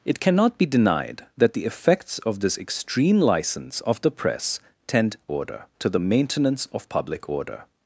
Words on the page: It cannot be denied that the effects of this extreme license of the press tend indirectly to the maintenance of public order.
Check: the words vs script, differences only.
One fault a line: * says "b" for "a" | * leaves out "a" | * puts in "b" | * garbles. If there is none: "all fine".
* says "order" for "indirectly"